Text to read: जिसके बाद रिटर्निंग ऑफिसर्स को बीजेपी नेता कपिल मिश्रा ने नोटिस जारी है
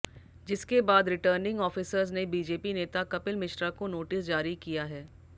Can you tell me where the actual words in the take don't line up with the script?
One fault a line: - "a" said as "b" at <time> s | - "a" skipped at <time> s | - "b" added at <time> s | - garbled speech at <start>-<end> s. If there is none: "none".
- "को" said as "ने" at 2.1 s
- "ने" said as "को" at 3.7 s
- "किया" added at 4.6 s